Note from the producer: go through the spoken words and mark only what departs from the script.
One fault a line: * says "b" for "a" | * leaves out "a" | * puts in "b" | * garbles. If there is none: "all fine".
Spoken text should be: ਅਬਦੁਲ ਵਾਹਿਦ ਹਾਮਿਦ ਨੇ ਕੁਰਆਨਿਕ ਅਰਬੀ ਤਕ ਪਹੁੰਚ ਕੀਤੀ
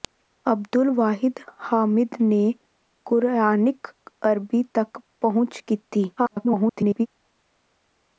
* garbles